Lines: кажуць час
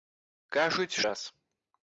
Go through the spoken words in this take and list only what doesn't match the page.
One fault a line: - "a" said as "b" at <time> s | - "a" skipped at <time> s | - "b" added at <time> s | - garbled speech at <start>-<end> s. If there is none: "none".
none